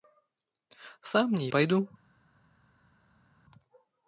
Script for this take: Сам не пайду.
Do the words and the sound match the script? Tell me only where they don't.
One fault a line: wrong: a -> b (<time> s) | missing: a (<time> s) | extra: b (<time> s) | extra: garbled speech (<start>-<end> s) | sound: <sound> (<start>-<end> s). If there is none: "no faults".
no faults